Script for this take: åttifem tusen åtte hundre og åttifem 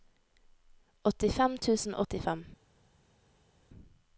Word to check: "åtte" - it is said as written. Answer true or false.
false